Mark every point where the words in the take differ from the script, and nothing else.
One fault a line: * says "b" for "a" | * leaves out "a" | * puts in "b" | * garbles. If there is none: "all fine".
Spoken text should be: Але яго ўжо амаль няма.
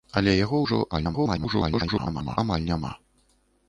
* garbles